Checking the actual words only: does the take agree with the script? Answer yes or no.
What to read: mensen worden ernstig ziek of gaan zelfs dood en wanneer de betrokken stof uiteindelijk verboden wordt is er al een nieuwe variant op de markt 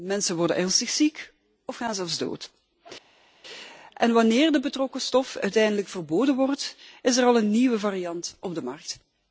yes